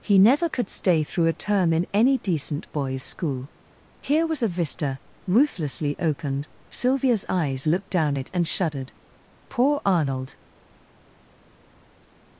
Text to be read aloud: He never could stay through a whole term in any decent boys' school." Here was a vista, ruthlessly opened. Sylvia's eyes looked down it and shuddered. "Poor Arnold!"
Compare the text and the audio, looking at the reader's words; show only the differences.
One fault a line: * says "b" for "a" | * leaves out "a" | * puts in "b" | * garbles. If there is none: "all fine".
* leaves out "whole"